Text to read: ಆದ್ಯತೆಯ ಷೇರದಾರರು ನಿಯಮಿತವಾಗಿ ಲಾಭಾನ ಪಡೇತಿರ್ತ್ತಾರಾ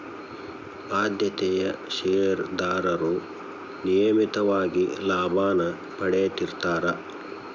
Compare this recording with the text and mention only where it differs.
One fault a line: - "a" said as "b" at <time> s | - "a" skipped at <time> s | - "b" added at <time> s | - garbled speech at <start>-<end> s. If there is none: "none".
none